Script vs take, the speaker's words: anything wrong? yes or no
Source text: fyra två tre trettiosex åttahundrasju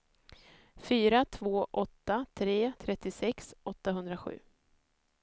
yes